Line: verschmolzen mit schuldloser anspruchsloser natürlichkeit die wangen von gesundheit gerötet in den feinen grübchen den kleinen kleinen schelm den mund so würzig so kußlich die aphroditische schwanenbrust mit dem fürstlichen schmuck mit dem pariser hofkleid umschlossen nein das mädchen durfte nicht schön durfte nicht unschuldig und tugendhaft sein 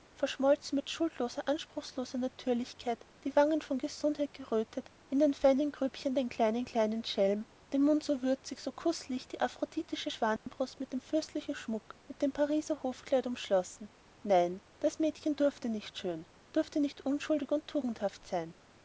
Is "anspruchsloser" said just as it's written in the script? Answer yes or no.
yes